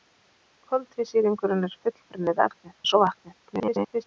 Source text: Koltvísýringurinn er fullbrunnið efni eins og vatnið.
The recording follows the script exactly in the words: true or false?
false